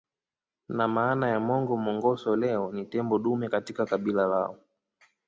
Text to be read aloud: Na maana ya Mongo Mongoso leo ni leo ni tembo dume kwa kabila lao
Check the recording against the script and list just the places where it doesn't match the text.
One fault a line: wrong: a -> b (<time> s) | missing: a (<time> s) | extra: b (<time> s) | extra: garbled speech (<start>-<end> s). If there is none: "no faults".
missing: leo ni (2.8 s)
wrong: kwa -> katika (3.5 s)